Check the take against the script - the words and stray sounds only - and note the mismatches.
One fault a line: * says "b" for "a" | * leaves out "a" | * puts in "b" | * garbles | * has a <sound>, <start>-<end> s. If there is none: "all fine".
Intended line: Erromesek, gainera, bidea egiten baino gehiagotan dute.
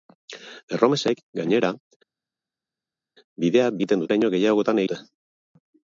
all fine